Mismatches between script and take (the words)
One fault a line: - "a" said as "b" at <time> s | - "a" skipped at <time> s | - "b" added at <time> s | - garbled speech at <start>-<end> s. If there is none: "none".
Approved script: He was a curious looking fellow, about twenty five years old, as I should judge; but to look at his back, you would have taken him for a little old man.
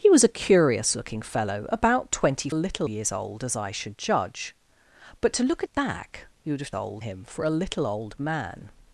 - "five" said as "little" at 2.5 s
- "his" skipped at 5.7 s
- "taken" said as "old" at 6.7 s